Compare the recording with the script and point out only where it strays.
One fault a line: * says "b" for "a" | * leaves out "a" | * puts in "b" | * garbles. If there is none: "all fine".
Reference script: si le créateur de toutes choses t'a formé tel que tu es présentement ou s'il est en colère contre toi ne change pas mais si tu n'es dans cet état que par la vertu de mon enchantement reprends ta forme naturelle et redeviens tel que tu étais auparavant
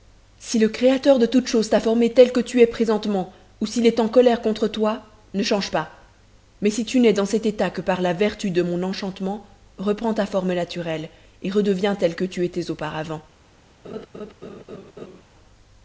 all fine